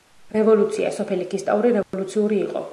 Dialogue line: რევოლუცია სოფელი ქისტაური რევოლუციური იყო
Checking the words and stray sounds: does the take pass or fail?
fail